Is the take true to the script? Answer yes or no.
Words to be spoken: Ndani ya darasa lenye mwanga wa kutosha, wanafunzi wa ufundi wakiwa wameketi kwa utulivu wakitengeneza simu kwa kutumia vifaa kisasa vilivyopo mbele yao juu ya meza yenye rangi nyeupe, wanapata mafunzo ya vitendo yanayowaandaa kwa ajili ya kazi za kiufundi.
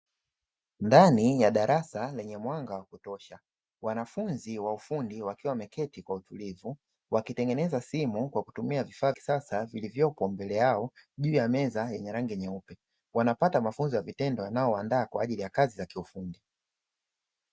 yes